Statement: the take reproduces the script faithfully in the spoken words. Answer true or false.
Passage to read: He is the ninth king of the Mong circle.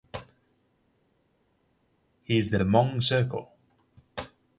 false